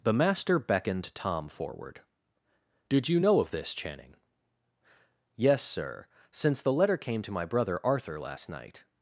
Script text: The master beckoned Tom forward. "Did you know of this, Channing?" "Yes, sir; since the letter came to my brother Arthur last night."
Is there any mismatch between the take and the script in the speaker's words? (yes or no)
no